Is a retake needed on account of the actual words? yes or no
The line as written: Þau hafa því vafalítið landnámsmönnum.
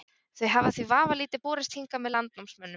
yes